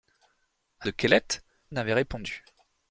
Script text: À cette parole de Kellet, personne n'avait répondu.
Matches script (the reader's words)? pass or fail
fail